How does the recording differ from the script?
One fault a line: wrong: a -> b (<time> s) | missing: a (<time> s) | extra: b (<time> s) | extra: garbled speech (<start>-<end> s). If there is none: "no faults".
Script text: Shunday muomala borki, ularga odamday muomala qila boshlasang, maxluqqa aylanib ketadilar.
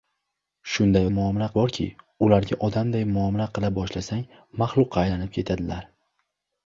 no faults